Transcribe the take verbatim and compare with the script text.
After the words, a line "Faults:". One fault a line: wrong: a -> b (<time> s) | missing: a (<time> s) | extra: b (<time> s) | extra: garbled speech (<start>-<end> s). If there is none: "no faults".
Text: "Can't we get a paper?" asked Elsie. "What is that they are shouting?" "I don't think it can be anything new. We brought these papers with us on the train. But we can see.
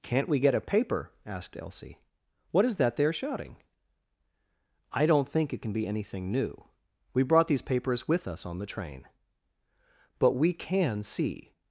"Can't we get a paper?" asked Elsie. "What is that they are shouting?" "I don't think it can be anything new. We brought these papers with us on the train. But we can see.
Faults:
no faults